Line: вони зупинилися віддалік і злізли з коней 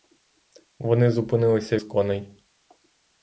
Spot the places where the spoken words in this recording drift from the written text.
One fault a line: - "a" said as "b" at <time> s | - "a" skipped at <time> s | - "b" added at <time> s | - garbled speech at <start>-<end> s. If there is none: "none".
- "віддалік і злізли" skipped at 1.8 s